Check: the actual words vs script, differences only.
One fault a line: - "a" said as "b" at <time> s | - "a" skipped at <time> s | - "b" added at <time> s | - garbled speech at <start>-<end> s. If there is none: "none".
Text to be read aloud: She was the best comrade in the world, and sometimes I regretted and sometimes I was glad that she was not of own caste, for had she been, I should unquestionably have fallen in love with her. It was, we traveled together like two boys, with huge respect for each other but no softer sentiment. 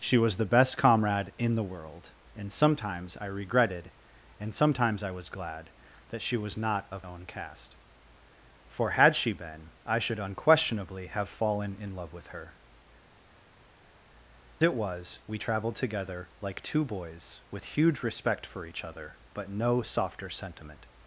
none